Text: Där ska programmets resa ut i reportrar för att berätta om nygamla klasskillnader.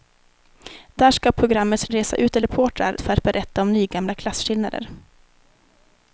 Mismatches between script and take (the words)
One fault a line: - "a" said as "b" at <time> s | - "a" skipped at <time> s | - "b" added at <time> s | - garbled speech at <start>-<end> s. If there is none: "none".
none